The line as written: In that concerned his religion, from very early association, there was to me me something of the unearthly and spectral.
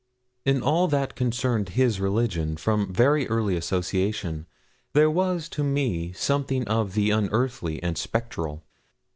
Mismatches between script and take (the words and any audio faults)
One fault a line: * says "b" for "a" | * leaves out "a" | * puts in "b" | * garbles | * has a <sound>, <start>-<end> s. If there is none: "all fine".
* puts in "all"
* leaves out "me"